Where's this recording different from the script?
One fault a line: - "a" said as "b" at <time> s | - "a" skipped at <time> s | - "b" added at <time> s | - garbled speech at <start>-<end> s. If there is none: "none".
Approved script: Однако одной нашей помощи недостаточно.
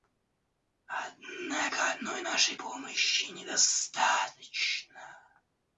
none